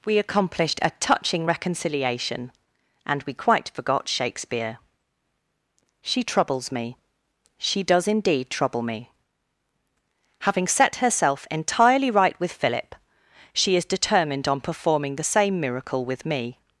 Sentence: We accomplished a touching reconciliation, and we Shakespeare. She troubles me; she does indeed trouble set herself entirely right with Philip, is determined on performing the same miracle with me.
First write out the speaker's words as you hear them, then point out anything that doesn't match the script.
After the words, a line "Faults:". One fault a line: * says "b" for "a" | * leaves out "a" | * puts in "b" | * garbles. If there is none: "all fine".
We accomplished a touching reconciliation, and we quite forgot Shakespeare. She troubles me; she does indeed trouble me. Having set herself entirely right with Philip, she is determined on performing the same miracle with me.
Faults:
* puts in "quite forgot"
* puts in "me Having"
* puts in "she"